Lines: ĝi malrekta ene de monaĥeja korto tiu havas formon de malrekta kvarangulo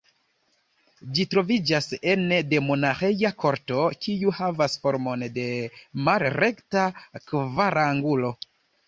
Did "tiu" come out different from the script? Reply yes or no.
yes